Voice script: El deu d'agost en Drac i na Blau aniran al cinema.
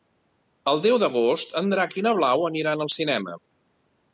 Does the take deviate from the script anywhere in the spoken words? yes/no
no